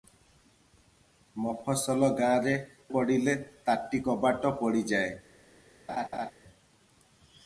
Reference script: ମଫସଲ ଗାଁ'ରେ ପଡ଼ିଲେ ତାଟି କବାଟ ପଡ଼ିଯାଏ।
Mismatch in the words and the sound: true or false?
true